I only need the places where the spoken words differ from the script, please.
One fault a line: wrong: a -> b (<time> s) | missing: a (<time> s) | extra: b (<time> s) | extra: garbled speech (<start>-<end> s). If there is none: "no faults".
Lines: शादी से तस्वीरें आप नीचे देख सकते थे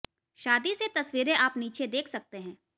wrong: थे -> हैं (2.4 s)